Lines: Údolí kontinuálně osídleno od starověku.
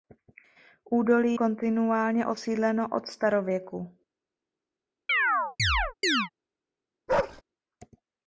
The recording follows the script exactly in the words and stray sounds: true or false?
false